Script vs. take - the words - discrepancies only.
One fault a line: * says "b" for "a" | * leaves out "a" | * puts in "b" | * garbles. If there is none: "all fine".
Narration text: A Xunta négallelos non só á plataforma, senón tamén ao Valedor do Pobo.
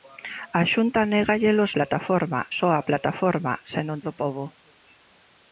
* says "plataforma" for "non"
* leaves out "tamén ao Valedor"